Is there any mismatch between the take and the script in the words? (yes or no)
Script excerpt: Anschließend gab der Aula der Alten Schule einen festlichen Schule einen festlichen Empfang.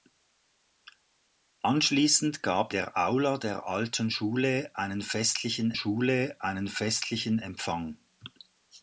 no